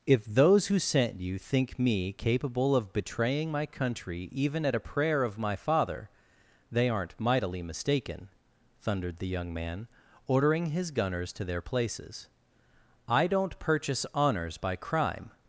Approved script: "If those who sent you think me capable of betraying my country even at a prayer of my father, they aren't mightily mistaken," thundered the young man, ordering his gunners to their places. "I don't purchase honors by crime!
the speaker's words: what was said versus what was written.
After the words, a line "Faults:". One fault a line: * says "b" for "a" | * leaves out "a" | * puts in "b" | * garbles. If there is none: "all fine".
"If those who sent you think me capable of betraying my country even at a prayer of my father, they aren't mightily mistaken," thundered the young man, ordering his gunners to their places. "I don't purchase honors by crime!
Faults:
all fine